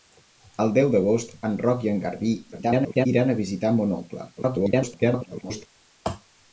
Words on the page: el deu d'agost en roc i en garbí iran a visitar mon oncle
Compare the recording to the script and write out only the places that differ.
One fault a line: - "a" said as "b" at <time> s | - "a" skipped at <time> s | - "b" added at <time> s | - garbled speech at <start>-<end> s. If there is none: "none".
- garbled speech at 2.5-3.1 s
- garbled speech at 4.4-5.7 s